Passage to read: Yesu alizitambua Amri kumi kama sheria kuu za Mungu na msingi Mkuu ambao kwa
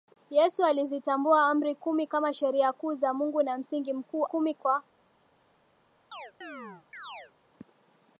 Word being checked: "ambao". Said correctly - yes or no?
no